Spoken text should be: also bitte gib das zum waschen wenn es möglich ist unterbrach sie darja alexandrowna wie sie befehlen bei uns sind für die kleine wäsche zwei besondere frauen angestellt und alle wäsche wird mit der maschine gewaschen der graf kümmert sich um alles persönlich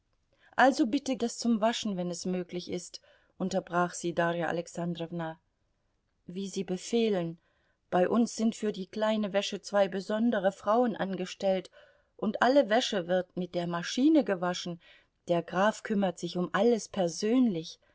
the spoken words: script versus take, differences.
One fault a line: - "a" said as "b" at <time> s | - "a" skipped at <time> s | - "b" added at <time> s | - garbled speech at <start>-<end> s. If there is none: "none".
- "gib" skipped at 1.1 s